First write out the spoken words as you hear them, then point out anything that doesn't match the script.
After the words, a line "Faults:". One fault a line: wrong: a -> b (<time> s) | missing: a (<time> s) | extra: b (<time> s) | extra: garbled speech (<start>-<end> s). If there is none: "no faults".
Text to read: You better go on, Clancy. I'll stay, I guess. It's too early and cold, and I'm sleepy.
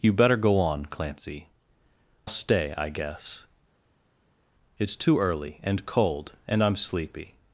You better go on, Clancy. Stay, I guess. It's too early and cold, and I'm sleepy.
Faults:
missing: I'll (1.5 s)